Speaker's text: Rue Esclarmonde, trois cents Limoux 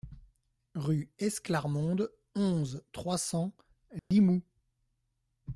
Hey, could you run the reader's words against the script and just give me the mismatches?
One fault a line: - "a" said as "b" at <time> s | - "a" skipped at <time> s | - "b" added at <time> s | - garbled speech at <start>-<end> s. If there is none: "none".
- "onze" added at 2.3 s